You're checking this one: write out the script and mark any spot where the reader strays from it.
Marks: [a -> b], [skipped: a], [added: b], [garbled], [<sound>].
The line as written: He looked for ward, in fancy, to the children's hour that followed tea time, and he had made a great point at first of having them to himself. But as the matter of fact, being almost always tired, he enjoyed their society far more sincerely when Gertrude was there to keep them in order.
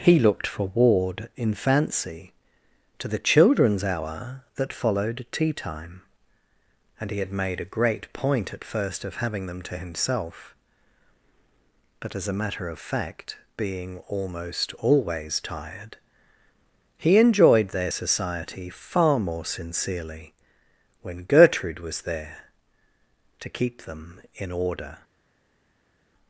He looked for ward, in fancy, to the children's hour that followed tea time, and he had made a great point at first of having them to himself. But as [the -> a] matter of fact, being almost always tired, he enjoyed their society far more sincerely when Gertrude was there to keep them in order.